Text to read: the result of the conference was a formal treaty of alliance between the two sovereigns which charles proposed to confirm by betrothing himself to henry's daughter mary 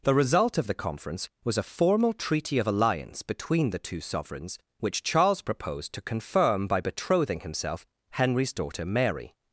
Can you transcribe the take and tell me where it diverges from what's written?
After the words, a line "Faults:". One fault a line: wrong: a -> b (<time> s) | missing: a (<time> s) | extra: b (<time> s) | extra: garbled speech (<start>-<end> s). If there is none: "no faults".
the result of the conference was a formal treaty of alliance between the two sovereigns which charles proposed to confirm by betrothing himself henry's daughter mary
Faults:
missing: to (7.8 s)